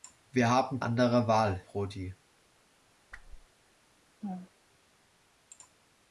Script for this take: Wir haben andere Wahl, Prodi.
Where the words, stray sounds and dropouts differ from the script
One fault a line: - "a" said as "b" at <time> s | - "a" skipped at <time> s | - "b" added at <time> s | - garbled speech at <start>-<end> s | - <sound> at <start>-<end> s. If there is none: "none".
- whoosh at 3.1-3.5 s
- laugh at 4.2-4.5 s